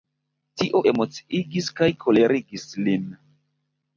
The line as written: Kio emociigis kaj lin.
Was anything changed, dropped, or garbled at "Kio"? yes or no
yes